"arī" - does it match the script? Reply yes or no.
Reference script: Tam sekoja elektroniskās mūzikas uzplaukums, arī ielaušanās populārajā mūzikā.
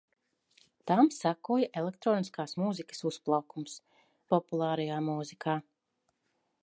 no